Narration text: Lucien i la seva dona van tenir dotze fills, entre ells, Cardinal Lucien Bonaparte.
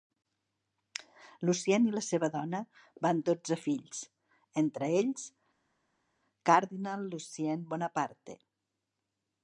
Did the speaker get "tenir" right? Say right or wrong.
wrong